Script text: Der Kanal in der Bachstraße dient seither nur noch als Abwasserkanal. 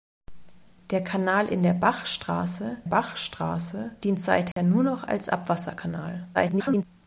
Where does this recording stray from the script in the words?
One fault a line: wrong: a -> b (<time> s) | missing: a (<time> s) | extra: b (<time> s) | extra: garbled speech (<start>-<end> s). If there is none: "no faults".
extra: Bachstraße (2.8 s)
extra: garbled speech (6.3-6.8 s)